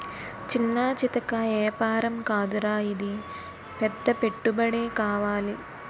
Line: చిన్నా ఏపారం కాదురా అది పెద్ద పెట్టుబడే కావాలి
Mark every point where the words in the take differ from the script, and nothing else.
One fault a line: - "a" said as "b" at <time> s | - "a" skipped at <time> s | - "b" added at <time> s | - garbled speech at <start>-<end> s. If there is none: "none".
- "చితకా" added at 0.9 s
- "అది" said as "ఇది" at 2.9 s